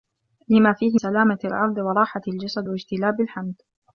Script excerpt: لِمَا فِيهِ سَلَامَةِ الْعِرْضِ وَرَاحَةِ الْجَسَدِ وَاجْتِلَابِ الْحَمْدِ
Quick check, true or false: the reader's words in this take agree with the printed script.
true